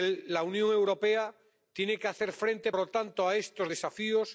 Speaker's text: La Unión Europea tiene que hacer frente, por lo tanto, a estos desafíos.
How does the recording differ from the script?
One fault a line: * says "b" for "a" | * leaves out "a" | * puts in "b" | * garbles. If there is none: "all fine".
* leaves out "por"